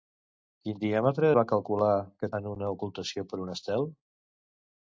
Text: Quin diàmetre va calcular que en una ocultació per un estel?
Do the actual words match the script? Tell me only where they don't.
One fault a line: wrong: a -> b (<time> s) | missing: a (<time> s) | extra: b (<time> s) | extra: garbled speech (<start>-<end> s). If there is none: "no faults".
no faults